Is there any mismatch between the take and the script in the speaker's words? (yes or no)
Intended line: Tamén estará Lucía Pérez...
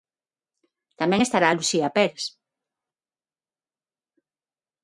no